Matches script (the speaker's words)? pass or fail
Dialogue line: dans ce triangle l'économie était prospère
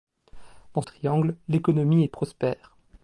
fail